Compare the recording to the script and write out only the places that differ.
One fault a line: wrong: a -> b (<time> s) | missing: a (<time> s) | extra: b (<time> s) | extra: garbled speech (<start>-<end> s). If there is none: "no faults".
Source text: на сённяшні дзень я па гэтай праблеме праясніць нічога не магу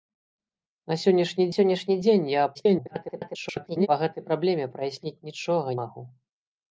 extra: сённяшні (1.5 s)
extra: garbled speech (2.5-3.9 s)
missing: не (5.7 s)